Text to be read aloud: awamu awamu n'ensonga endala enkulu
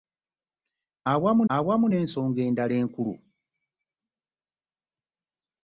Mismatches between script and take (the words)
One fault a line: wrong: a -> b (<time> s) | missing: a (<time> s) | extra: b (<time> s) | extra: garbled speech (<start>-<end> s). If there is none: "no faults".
no faults